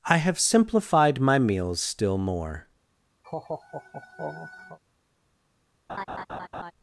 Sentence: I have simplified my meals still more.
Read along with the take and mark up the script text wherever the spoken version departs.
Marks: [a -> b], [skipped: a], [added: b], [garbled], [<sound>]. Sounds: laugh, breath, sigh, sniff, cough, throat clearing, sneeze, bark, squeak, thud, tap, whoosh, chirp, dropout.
I have simplified my meals still more. [laugh] [laugh]